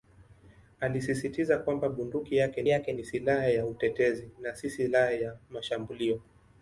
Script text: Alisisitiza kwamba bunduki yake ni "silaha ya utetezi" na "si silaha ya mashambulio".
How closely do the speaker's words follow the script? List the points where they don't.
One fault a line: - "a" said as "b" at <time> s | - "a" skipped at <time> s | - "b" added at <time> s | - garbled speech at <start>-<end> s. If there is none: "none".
- "yake" added at 2.7 s